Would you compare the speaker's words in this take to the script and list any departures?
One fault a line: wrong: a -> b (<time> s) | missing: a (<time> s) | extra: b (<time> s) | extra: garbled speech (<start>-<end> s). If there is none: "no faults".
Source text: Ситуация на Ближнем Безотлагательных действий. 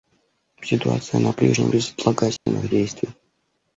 no faults